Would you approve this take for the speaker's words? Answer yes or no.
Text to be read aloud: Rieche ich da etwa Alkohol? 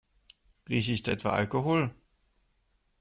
yes